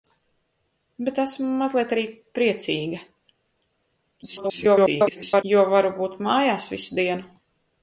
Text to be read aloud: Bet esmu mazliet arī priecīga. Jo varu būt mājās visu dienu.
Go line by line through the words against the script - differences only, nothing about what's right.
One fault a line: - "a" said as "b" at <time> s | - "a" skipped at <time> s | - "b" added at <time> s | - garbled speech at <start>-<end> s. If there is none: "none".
- garbled speech at 4.2-5.4 s